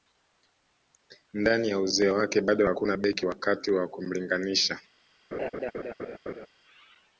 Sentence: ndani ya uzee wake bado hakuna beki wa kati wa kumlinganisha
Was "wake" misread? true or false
false